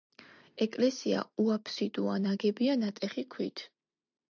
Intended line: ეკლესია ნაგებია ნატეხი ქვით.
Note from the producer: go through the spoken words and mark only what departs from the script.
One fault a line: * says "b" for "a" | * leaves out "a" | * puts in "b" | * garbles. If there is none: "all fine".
* puts in "უაფსიდოა"